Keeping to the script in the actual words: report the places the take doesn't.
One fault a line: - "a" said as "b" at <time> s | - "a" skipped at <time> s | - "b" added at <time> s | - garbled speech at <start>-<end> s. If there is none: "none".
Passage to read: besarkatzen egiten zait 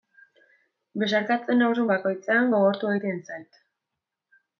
- "nauzun bakoitzean gogortu" added at 1.6 s